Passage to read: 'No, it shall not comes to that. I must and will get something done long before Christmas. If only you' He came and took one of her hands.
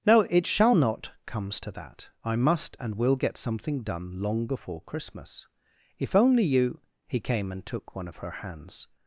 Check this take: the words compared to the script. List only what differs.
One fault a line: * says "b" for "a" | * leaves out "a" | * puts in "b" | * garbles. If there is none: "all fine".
all fine